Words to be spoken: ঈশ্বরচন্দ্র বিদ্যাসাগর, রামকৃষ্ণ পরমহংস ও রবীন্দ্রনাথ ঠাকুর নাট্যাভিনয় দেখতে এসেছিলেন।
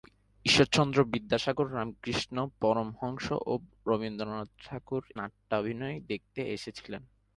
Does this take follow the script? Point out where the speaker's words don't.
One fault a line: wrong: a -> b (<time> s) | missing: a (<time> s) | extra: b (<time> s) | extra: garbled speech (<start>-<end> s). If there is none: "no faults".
no faults